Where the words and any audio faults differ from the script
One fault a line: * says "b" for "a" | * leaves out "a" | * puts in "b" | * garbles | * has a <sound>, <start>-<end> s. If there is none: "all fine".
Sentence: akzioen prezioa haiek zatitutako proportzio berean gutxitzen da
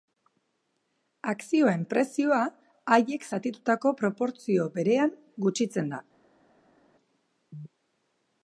all fine